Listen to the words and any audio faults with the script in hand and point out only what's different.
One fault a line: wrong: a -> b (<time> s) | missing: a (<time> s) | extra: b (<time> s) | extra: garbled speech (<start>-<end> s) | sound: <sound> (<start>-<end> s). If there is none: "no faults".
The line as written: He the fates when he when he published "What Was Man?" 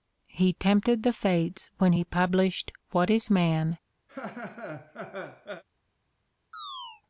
extra: tempted (0.5 s)
missing: when he (2.0 s)
wrong: Was -> Is (3.1 s)
sound: laugh (4.1-5.6 s)
sound: chirp (6.5-7.0 s)